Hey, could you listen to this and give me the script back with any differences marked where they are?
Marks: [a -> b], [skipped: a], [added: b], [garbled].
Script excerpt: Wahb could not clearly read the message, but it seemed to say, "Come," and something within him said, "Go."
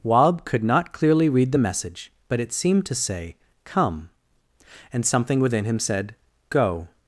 Wahb could not clearly read the message, but it seemed to say, "Come," and something within him said, "Go."